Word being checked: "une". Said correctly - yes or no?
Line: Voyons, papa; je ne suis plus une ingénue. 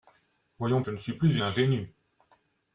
no